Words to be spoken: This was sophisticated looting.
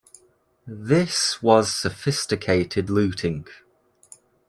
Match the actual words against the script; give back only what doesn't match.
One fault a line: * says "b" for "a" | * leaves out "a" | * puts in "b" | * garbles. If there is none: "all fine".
all fine